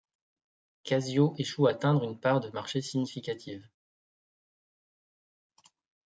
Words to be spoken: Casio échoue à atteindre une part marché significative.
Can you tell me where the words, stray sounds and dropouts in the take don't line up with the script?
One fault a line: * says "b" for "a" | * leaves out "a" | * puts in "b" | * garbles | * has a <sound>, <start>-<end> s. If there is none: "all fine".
* puts in "de"